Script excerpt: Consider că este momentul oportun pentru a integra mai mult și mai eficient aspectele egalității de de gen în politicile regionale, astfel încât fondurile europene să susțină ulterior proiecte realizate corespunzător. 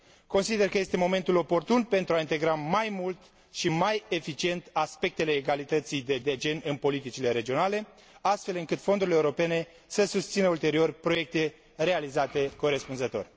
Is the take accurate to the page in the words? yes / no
yes